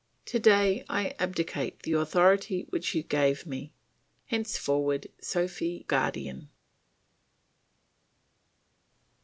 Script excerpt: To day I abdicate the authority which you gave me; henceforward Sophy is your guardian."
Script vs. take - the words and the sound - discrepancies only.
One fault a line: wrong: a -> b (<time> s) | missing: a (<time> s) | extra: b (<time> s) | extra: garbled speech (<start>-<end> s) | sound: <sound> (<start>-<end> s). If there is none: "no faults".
missing: is your (5.9 s)